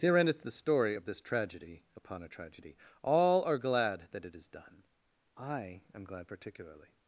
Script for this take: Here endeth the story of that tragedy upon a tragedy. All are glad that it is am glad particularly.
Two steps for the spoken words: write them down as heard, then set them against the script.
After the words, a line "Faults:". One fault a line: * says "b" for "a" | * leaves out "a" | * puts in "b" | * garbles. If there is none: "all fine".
Here endeth the story of this tragedy upon a tragedy. All are glad that it is done. I am glad particularly.
Faults:
* says "this" for "that"
* puts in "done I"